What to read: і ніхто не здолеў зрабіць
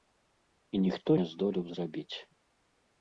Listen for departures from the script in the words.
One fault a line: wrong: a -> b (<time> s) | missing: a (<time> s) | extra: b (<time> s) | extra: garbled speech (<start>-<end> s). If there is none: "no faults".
no faults